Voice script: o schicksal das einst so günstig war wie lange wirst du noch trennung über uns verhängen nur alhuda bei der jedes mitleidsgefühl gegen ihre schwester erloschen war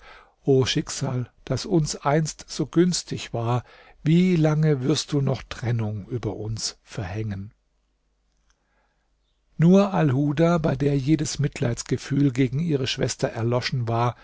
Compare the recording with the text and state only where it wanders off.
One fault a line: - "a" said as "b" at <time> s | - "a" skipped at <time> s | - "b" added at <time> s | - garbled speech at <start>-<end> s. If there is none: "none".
- "uns" added at 1.7 s